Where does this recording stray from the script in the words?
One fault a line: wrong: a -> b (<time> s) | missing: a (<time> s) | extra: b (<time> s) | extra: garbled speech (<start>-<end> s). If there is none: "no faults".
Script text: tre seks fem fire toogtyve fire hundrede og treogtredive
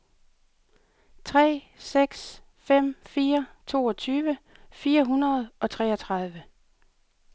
no faults